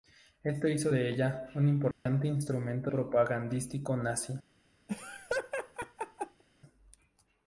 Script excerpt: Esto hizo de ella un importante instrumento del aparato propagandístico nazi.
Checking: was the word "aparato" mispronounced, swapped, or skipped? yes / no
yes